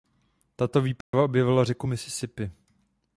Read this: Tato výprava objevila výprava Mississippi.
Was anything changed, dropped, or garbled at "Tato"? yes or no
no